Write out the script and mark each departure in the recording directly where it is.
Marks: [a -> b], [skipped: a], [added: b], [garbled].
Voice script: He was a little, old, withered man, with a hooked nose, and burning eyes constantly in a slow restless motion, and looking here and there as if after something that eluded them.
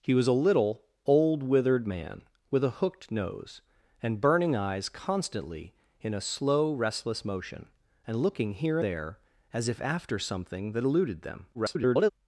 He was a little, old, withered man, with a hooked nose, and burning eyes constantly in a slow restless motion, and looking here [skipped: and] there as if after something that eluded them. [garbled]